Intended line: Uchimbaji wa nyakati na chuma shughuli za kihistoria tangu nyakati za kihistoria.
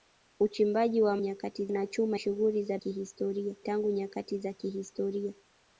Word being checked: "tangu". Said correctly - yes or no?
yes